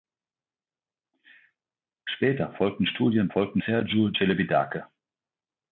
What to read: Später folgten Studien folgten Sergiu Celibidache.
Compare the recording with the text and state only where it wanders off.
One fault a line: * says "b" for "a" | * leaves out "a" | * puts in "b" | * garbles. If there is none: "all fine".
all fine